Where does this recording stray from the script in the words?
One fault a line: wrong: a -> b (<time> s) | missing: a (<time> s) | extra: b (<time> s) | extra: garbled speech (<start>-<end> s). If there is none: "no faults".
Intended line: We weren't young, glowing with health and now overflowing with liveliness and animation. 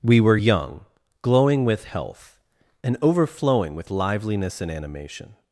wrong: weren't -> were (0.2 s)
missing: now (3.0 s)